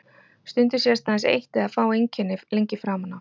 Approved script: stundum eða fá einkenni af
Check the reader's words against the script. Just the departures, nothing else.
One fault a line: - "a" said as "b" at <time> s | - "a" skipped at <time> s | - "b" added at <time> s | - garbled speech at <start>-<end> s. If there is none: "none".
- "sést aðeins eitt" added at 0.8 s
- "lengi framan" added at 2.6 s